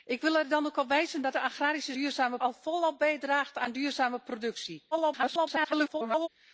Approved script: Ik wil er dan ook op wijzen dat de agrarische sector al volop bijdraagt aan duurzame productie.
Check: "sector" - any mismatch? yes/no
yes